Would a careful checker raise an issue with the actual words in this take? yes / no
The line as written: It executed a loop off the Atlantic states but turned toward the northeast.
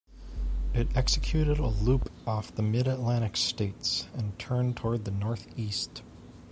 yes